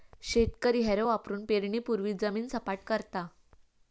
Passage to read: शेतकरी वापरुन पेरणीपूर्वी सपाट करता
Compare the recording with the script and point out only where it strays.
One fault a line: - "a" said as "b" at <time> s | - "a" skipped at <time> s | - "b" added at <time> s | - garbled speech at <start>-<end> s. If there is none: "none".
- "हॅरो" added at 0.8 s
- "जमीन" added at 2.2 s